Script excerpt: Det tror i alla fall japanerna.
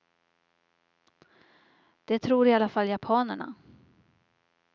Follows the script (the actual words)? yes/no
yes